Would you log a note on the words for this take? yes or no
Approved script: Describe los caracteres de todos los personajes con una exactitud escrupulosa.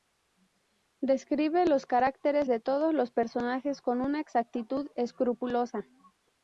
no